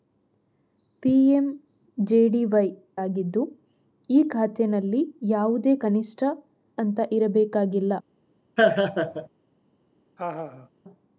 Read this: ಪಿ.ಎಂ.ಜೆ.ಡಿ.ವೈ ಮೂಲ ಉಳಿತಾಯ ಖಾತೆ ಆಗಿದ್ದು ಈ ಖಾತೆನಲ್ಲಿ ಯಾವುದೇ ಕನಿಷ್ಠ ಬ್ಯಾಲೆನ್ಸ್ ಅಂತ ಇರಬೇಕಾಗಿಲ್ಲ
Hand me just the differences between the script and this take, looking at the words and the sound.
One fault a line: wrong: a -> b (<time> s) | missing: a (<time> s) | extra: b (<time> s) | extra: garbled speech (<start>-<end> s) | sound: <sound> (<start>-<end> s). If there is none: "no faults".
missing: ಮೂಲ ಉಳಿತಾಯ ಖಾತೆ (2.7 s)
missing: ಬ್ಯಾಲೆನ್ಸ್ (6.2 s)
sound: laugh (8.6-9.3 s)
sound: laugh (10.2-10.7 s)